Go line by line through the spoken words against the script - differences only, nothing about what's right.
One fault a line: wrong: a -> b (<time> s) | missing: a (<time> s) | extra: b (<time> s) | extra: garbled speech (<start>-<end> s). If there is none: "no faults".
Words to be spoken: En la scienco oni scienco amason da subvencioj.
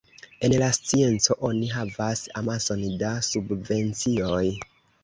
wrong: scienco -> havas (1.8 s)